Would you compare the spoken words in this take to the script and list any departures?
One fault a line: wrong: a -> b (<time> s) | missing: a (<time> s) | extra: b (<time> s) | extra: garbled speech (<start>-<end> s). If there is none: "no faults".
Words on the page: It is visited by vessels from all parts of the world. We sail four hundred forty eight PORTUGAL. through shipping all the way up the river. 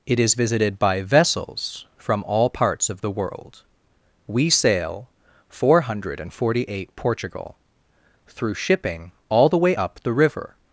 no faults